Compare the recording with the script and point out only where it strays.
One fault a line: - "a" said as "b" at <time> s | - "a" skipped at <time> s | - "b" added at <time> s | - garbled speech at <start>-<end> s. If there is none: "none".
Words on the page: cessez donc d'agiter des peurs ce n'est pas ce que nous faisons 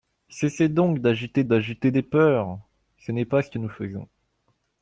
- "d'agiter" added at 1.4 s